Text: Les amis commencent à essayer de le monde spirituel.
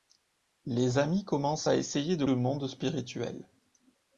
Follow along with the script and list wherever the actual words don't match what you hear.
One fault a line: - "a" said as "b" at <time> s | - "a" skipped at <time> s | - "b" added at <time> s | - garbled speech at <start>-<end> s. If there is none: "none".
none